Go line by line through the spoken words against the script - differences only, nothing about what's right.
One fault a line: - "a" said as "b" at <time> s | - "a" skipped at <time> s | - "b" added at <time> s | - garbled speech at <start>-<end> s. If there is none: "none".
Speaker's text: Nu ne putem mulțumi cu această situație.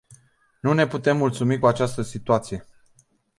none